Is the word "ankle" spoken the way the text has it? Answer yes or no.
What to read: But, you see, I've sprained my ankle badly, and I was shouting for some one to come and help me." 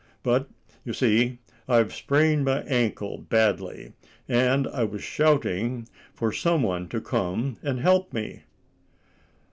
yes